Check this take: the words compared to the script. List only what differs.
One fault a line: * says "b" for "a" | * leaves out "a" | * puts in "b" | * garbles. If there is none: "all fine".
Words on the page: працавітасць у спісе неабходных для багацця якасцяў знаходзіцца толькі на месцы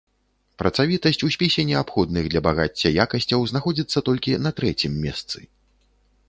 * puts in "трэцім"